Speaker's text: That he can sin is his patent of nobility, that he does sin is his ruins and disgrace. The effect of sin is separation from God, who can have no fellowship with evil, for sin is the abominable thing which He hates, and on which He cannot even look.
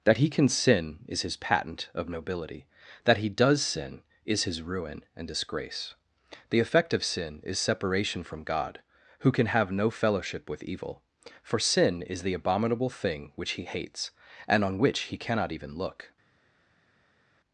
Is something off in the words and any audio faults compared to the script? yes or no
yes